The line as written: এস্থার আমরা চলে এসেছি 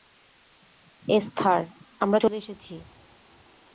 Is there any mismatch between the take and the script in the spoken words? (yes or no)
no